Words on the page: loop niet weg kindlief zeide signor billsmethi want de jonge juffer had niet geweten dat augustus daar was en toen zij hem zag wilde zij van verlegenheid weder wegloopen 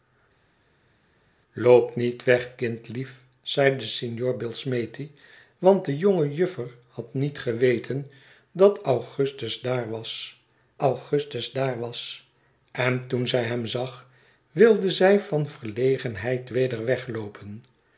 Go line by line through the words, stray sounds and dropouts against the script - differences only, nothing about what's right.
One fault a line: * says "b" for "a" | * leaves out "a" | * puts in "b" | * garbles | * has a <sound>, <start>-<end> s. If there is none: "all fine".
* puts in "augustus daar was"